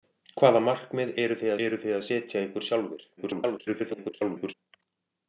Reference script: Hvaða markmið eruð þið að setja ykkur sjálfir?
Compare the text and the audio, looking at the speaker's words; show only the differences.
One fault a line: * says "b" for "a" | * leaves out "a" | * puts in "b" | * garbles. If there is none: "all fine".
* puts in "eruð þið"
* garbles